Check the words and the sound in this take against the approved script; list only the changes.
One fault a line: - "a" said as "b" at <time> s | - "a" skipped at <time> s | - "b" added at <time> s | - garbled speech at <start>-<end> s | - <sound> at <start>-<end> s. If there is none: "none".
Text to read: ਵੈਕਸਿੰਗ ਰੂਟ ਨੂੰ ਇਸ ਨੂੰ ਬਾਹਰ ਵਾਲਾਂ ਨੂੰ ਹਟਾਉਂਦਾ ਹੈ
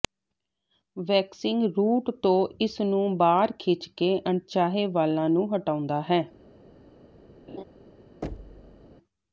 - "ਨੂੰ" said as "ਤੋਂ" at 2.2 s
- "ਖਿੱਚ ਕੇ ਅਣਚਾਹੇ" added at 3.6 s
- laugh at 7.5-7.6 s
- thud at 8.2-8.9 s